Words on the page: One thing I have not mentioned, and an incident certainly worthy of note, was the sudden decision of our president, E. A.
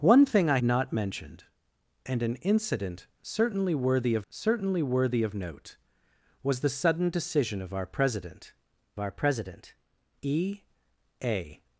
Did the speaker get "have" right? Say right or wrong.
wrong